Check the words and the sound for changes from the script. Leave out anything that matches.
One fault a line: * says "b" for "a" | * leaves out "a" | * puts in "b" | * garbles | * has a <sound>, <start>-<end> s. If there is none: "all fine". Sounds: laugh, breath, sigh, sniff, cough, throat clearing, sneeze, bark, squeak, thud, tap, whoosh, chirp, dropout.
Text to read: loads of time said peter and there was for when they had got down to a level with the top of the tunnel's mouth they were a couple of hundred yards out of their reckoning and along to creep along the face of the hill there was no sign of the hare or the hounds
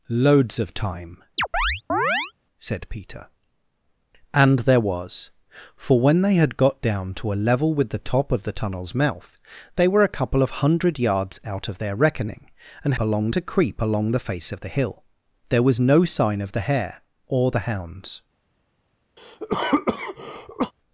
* has a chirp, 1.4-2.3 s
* has a cough, 19.2-20.7 s